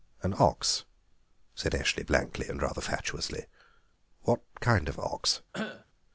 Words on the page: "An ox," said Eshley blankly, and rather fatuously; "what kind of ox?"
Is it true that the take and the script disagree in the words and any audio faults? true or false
true